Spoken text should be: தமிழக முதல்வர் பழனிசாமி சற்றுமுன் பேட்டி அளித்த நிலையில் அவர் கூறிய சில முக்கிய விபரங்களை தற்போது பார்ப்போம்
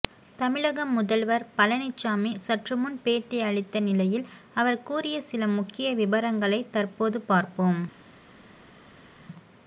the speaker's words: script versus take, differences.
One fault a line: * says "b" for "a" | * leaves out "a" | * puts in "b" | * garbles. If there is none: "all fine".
all fine